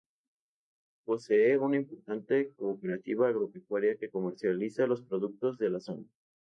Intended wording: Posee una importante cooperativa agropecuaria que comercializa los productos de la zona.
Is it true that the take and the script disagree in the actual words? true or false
false